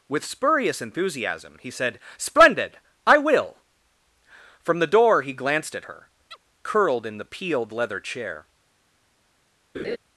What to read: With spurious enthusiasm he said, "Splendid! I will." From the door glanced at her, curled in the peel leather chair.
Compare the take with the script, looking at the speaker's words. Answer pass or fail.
fail